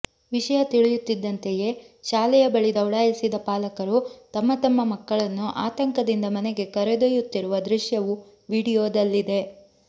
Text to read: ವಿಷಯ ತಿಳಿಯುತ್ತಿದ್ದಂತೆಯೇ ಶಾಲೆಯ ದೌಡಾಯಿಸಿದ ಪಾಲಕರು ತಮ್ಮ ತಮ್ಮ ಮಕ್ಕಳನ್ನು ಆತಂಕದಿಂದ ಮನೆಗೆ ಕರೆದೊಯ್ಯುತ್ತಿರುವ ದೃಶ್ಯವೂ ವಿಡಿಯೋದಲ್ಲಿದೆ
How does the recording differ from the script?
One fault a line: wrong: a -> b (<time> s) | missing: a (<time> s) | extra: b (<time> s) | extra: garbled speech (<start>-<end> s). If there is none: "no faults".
extra: ಬಳಿ (2.5 s)